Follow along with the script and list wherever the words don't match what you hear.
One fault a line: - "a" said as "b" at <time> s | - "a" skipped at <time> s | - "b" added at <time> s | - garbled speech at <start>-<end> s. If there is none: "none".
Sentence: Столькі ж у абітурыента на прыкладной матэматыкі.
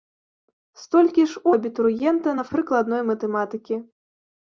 none